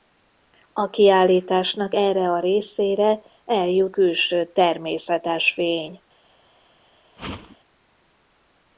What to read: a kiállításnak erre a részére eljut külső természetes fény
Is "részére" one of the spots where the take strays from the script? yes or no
no